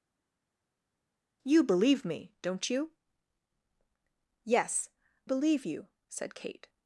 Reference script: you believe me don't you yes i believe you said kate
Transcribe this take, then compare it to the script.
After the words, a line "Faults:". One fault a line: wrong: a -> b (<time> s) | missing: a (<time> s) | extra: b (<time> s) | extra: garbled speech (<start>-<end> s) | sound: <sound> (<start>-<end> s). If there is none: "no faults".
you believe me don't you yes believe you said kate
Faults:
missing: i (4.9 s)